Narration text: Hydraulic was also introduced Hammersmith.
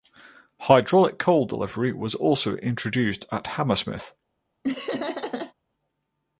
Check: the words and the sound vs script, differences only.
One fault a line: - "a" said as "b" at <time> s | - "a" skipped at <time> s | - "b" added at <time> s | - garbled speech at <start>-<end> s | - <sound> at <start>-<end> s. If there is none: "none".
- "coal delivery" added at 1.2 s
- "at" added at 3.3 s
- laugh at 4.6-5.5 s